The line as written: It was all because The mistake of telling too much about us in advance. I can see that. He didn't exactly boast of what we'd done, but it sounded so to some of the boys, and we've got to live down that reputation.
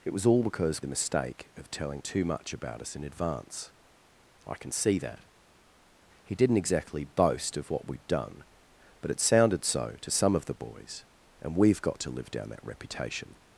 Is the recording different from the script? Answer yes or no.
no